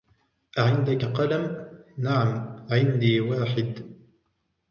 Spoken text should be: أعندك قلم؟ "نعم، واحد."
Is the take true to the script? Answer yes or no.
no